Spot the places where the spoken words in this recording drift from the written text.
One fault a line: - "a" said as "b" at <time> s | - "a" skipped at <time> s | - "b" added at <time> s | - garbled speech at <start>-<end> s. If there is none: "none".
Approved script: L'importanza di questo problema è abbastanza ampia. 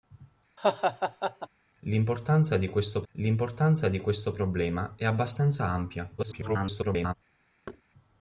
- "l'importanza di questo" added at 3.1 s
- garbled speech at 6.2-7.1 s